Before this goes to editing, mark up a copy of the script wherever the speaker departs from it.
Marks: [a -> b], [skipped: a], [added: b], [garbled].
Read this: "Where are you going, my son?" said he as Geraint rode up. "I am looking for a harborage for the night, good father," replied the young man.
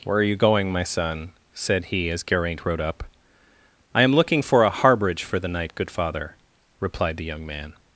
"Where are you going, my son?" said he as Geraint rode up. "I am looking for a harborage for the night, good father," replied the young man.